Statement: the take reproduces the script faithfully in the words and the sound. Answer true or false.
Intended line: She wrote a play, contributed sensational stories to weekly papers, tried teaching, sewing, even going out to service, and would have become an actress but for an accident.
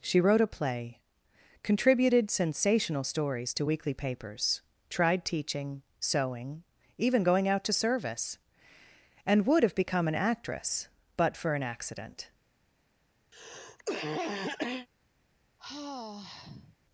false